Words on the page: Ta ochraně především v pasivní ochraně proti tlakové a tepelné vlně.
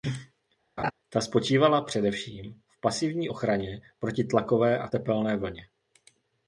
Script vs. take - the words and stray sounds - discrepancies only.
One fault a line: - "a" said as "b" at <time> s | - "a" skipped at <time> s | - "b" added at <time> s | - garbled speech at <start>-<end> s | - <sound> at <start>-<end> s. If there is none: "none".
- laugh at 0.8-0.9 s
- "ochraně" said as "spočívala" at 1.2 s